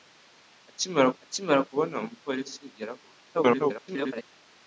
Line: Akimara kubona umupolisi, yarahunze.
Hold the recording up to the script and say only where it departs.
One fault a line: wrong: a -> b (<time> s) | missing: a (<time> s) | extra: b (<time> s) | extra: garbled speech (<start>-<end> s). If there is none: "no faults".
extra: akimara (1.2 s)
extra: garbled speech (3.3-4.3 s)